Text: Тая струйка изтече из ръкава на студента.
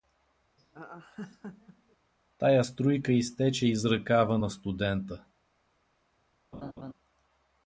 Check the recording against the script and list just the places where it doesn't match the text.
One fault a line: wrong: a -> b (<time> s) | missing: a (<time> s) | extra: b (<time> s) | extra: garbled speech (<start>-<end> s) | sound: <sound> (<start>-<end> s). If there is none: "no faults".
sound: laugh (0.6-2.0 s)
sound: laugh (6.5-6.9 s)